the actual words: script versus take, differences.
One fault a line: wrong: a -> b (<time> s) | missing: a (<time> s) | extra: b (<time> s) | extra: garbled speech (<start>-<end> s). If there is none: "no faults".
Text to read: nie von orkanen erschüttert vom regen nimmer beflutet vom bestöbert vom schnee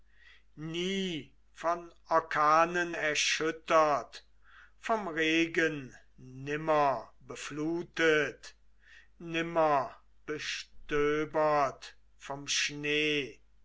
wrong: vom -> nimmer (9.2 s)